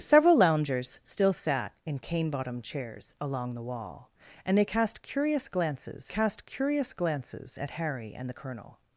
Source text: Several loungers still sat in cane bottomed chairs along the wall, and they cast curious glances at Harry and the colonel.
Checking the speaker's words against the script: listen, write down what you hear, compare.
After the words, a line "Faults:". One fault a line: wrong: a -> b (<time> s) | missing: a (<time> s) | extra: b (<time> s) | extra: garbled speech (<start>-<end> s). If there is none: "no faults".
Several loungers still sat in cane bottomed chairs along the wall, and they cast curious glances cast curious glances at Harry and the colonel.
Faults:
extra: cast curious glances (6.1 s)